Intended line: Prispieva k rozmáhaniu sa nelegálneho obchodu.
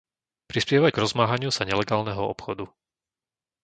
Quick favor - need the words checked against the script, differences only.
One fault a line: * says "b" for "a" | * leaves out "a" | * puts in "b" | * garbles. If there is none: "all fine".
all fine